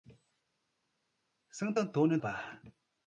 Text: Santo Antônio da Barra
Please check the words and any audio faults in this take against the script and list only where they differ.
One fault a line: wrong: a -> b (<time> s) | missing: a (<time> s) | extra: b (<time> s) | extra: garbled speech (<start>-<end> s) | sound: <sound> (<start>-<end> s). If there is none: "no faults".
missing: da (2.2 s)